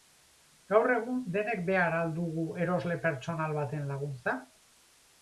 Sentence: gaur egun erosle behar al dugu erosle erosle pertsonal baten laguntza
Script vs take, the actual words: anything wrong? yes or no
yes